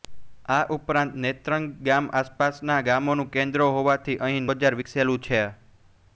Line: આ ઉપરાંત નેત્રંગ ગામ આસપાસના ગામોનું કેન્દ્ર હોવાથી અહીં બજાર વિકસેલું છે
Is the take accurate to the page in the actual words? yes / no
yes